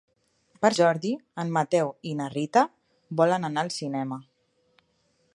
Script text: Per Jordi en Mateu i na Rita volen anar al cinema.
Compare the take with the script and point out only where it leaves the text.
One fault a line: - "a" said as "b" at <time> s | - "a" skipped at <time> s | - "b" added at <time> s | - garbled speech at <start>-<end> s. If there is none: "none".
none